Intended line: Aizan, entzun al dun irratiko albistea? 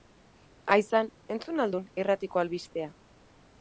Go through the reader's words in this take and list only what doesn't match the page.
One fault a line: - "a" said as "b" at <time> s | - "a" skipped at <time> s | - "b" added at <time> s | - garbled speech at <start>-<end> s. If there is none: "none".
none